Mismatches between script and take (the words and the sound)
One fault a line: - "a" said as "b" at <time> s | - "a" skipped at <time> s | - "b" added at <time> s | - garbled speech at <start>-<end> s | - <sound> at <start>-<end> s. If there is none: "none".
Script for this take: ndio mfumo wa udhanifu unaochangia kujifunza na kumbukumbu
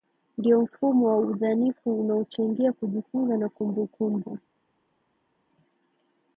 none